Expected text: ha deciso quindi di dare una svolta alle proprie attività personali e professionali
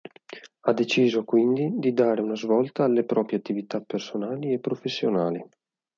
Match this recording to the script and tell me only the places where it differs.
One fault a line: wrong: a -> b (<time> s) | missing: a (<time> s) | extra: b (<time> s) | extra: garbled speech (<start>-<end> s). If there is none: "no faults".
no faults